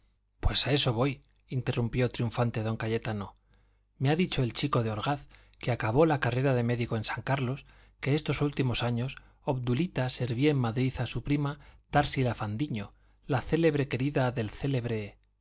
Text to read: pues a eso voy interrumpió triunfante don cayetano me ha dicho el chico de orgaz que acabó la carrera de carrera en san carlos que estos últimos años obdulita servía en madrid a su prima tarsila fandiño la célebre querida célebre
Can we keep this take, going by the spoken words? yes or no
no